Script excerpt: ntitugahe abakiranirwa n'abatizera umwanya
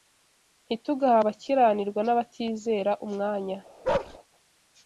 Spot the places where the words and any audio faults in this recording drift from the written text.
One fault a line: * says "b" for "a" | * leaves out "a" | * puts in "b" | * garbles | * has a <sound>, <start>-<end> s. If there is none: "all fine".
* has a bark, 3.8-4.2 s